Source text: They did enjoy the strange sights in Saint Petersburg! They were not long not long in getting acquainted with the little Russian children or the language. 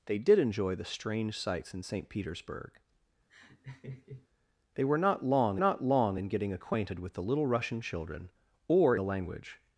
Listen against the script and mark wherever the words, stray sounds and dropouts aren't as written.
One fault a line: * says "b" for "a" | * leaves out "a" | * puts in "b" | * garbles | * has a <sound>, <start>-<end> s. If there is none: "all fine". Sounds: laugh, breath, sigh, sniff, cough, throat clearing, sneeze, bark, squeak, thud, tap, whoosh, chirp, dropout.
* has a laugh, 3.3-4.3 s